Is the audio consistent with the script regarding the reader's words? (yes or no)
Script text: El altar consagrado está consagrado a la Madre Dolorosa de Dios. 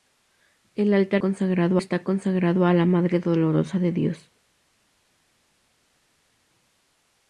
yes